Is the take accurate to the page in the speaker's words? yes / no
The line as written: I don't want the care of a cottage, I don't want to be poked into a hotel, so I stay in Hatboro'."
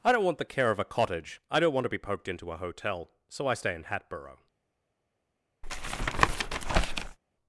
yes